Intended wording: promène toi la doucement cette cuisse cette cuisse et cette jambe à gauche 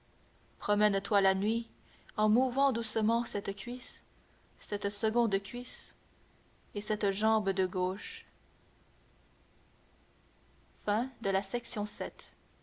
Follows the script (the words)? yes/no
no